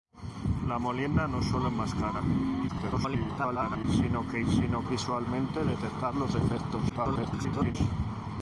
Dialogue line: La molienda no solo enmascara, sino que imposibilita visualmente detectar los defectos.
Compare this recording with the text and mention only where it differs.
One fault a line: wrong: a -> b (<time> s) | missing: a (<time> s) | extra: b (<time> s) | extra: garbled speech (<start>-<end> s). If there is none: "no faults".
extra: garbled speech (2.7-3.8 s)
wrong: imposibilita -> sino (4.5 s)
extra: garbled speech (6.9-7.8 s)